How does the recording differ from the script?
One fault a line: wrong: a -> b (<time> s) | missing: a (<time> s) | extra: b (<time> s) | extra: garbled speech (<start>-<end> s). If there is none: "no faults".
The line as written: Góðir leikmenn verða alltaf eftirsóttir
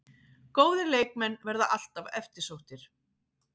no faults